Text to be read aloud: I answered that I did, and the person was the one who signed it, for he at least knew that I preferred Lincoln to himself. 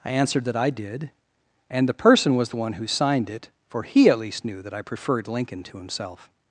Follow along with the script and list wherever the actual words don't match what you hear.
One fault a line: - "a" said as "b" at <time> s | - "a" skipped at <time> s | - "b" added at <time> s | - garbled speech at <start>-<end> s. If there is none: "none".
none